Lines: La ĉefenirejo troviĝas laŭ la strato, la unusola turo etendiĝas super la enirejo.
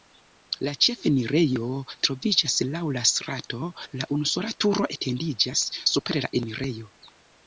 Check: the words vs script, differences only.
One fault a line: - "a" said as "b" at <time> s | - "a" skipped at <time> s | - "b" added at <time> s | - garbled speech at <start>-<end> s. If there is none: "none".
none